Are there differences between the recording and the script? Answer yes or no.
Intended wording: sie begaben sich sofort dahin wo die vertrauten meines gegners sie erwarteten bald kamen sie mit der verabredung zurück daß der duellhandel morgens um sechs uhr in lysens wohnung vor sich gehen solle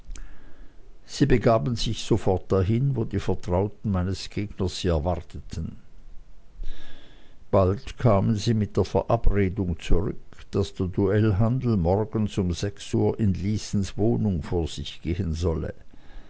no